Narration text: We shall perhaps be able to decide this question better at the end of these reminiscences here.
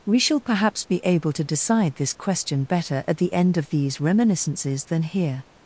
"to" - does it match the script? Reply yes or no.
yes